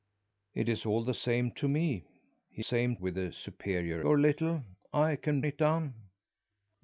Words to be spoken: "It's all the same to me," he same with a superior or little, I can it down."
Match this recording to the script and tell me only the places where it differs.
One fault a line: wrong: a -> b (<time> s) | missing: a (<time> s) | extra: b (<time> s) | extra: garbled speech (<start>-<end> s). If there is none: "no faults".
no faults